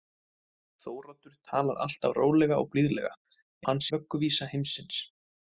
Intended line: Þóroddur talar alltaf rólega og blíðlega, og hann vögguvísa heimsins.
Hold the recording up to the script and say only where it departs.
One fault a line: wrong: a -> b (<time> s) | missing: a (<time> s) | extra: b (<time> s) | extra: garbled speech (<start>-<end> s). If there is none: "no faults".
no faults